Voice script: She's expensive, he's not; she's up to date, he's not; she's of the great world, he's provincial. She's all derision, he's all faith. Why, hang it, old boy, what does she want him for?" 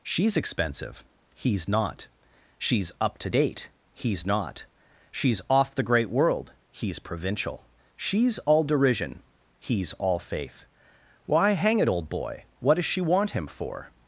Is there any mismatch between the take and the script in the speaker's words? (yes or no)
yes